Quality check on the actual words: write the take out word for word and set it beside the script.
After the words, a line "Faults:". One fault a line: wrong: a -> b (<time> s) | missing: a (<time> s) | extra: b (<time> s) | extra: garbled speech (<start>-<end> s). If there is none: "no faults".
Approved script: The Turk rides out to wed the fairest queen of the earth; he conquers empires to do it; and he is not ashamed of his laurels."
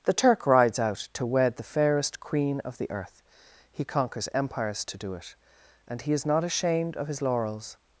The Turk rides out to wed the fairest queen of the earth; he conquers empires to do it; and he is not ashamed of his laurels."
Faults:
no faults